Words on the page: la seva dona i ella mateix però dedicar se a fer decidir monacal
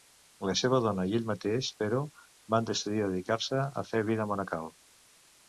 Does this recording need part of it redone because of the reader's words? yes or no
yes